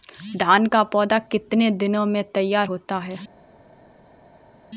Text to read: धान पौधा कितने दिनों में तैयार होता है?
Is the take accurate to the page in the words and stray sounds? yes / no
no